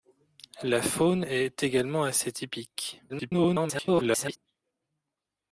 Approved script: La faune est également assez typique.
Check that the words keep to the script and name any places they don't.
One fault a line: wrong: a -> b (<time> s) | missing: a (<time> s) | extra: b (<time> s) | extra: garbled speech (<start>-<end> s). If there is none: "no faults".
extra: garbled speech (3.1-4.4 s)